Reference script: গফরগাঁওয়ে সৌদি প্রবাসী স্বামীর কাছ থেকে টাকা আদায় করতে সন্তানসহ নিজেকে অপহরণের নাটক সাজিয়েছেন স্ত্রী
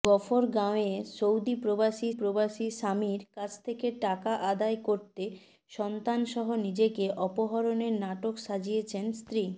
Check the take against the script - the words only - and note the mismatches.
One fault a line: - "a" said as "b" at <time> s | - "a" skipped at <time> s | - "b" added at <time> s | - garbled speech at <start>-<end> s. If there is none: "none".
- "প্রবাসী" added at 2.1 s